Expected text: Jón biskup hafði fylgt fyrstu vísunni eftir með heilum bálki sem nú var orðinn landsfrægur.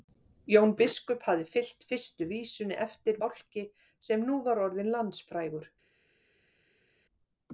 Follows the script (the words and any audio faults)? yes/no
no